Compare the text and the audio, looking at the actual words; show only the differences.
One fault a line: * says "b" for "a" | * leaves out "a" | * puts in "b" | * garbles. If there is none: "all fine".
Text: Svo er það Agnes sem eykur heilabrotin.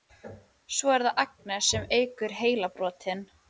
all fine